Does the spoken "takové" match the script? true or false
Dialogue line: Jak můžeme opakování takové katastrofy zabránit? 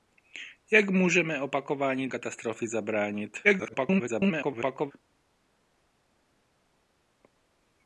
false